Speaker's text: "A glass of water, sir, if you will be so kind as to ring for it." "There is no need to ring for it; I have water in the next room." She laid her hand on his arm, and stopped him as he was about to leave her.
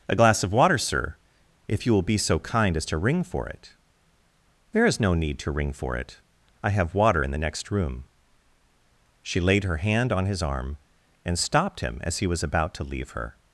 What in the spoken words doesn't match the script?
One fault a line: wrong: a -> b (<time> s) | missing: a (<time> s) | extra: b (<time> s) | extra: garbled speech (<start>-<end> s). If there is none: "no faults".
no faults